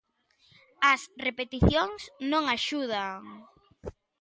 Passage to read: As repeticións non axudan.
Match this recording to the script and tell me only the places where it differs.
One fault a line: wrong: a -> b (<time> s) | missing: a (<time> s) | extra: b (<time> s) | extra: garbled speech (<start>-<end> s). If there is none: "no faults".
no faults